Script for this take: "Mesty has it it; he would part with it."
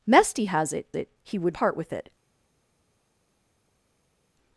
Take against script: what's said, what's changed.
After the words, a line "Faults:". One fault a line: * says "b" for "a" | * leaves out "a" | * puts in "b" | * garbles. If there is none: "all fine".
"Mesty has it it; he would part with it."
Faults:
all fine